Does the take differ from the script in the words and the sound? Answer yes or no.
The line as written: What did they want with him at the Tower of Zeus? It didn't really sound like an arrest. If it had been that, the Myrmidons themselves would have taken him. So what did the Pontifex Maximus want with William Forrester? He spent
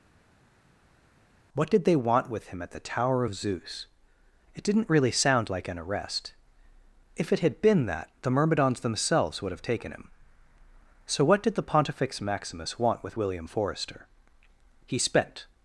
no